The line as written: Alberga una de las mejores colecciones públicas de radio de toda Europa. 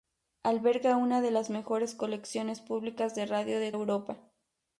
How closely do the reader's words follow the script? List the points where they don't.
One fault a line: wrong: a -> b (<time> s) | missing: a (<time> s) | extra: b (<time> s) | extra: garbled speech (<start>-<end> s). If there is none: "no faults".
missing: toda (3.7 s)